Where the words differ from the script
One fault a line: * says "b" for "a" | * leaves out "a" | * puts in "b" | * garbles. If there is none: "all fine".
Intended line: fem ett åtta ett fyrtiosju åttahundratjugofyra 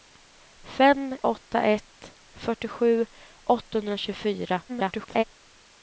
* leaves out "ett"
* garbles